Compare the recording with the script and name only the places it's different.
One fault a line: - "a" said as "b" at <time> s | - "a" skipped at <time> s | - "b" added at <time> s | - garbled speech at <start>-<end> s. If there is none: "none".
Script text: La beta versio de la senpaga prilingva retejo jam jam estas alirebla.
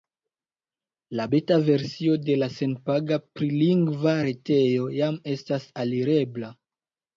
- "jam" skipped at 5.2 s